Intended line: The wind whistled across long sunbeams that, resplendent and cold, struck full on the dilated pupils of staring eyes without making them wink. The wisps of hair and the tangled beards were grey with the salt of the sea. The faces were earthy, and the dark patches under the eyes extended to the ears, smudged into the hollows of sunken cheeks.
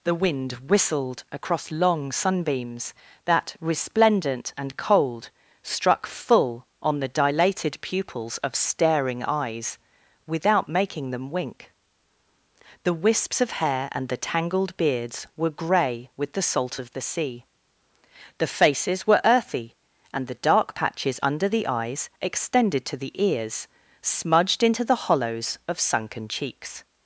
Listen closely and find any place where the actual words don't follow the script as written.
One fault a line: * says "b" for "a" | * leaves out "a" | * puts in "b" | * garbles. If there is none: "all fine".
all fine